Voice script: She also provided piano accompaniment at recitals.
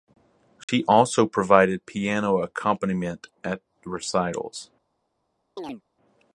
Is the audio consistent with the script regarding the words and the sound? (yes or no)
no